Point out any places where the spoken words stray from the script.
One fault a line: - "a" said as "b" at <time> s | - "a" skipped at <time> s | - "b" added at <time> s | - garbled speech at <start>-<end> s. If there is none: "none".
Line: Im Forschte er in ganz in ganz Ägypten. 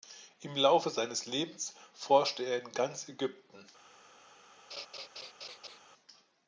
- "Laufe seines Lebens" added at 0.6 s
- "in ganz" skipped at 3.1 s